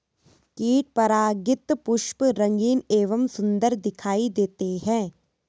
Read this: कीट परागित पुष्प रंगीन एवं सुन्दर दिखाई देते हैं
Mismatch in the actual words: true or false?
false